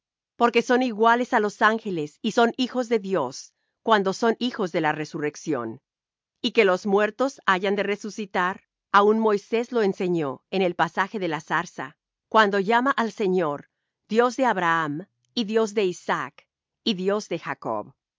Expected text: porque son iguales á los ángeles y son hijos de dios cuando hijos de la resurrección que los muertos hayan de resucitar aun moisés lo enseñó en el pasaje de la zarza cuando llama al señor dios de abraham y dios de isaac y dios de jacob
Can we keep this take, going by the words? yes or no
no